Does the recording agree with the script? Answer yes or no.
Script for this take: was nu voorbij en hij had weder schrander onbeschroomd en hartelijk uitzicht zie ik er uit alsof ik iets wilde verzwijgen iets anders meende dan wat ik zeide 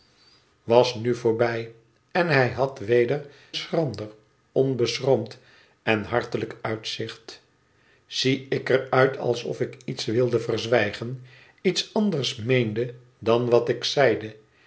yes